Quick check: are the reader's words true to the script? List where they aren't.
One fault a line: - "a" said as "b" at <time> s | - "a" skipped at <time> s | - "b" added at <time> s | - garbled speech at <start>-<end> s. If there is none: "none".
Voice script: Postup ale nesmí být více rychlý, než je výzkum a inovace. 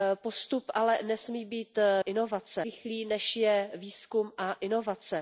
- "více" said as "inovace" at 2.0 s